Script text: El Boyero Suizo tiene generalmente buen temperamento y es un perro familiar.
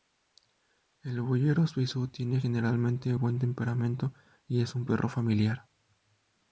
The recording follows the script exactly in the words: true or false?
true